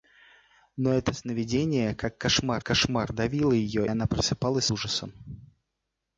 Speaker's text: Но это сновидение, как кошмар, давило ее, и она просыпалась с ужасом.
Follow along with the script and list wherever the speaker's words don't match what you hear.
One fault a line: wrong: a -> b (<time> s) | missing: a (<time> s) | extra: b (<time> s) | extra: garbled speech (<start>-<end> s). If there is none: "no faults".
extra: кошмар (2.6 s)
missing: и (3.8 s)
missing: с (4.7 s)